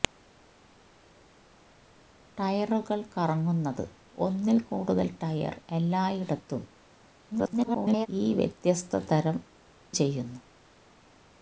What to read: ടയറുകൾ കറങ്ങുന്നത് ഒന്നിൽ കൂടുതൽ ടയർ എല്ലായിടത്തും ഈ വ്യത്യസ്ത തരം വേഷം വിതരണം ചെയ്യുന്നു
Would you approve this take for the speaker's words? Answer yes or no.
no